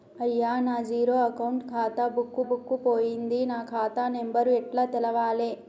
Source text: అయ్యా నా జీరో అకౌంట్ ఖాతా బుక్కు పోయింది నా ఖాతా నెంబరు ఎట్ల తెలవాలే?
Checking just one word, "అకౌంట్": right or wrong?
right